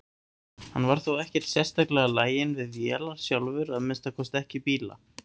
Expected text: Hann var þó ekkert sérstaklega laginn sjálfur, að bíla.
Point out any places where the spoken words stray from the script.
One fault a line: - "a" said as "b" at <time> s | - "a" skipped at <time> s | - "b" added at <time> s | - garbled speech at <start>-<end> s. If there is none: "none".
- "við vélar" added at 2.6 s
- "minnsta kosti ekki" added at 3.9 s